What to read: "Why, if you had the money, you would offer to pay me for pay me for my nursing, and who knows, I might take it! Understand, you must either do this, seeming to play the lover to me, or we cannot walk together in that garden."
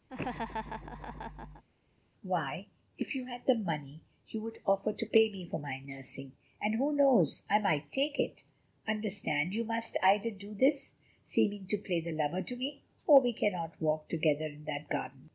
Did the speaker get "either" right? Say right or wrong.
right